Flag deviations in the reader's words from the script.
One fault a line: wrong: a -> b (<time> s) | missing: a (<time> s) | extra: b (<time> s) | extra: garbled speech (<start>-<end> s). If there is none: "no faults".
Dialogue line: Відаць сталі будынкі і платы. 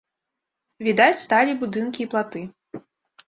no faults